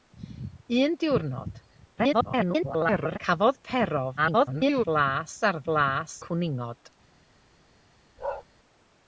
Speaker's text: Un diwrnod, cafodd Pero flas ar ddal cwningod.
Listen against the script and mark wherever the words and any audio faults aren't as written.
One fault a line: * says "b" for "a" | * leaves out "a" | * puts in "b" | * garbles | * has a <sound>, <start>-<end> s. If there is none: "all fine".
* garbles
* garbles
* says "flas" for "ddal"
* has a bark, 8.2-8.4 s